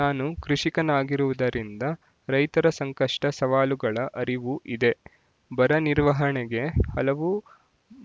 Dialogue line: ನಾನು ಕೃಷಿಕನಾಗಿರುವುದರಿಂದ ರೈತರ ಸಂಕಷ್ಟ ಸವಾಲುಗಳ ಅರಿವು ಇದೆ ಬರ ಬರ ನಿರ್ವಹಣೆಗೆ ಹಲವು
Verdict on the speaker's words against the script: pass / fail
fail